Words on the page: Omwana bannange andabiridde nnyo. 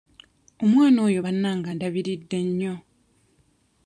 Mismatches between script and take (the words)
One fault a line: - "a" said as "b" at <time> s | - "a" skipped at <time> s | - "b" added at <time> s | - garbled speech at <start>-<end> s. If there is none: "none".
- "oyo" added at 1.1 s